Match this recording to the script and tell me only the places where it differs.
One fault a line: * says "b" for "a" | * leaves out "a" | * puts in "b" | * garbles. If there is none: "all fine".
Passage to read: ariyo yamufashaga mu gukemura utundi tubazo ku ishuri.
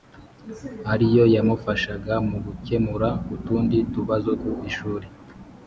all fine